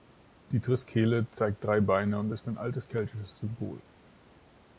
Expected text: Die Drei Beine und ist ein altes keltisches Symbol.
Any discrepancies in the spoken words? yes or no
yes